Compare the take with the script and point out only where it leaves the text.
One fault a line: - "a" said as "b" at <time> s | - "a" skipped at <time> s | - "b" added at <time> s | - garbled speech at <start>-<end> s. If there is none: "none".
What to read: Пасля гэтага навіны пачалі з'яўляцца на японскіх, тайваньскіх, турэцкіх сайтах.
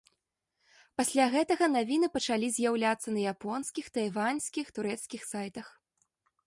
none